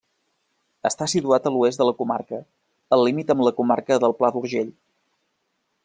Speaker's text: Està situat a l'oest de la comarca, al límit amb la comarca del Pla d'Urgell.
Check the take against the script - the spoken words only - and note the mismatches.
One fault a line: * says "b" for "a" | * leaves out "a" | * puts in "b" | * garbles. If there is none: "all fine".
all fine